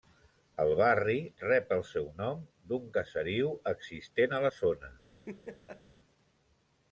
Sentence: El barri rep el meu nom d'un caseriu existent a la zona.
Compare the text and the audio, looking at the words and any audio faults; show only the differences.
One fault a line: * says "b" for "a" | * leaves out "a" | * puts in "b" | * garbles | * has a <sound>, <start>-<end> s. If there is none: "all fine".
* says "seu" for "meu"
* has a laugh, 5.3-5.8 s